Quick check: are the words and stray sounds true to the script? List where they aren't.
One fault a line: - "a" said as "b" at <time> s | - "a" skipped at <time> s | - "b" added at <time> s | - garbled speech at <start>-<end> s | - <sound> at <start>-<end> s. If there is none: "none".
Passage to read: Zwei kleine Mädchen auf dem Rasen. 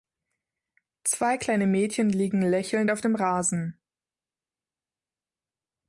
- "liegen lächelnd" added at 2.1 s